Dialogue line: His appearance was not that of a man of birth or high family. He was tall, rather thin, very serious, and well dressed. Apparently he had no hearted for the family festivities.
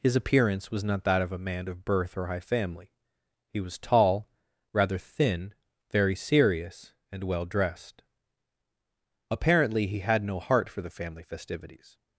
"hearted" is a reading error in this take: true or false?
true